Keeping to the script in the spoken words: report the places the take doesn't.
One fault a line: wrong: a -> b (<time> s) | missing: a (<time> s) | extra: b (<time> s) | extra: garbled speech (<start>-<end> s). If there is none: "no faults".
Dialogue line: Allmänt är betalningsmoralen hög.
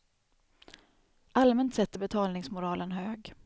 extra: sett (1.8 s)